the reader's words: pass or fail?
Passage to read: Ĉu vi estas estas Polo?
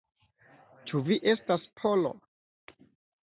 fail